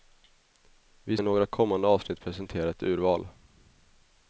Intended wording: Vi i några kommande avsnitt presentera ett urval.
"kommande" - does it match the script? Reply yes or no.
yes